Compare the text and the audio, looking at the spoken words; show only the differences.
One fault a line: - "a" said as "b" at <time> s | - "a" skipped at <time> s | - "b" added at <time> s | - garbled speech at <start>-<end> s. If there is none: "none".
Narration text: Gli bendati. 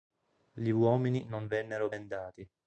- "uomini non vennero" added at 0.7 s